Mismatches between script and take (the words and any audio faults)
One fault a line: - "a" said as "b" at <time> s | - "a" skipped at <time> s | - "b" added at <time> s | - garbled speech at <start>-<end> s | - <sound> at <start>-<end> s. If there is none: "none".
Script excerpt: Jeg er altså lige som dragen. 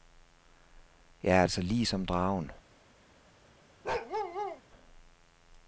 - bark at 3.8-4.6 s